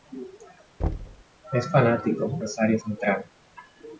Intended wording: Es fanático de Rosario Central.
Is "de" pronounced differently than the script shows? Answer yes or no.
yes